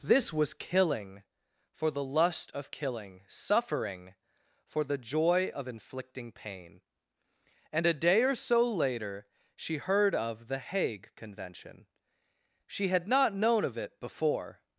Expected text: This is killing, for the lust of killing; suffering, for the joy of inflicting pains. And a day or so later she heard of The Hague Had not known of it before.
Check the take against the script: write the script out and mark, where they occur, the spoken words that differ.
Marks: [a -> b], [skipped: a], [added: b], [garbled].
This [is -> was] killing, for the lust of killing; suffering, for the joy of inflicting [pains. -> pain] And a day or so later she heard of The Hague [added: Convention She] Had not known of it before.